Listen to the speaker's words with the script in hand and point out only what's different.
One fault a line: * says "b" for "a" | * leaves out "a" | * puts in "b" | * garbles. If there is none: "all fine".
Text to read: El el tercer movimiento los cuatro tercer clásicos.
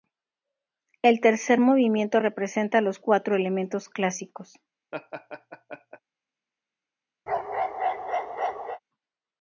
* leaves out "el"
* puts in "representa"
* says "elementos" for "tercer"